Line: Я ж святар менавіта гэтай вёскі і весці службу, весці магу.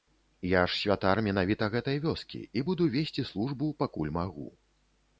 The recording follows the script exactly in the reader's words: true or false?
false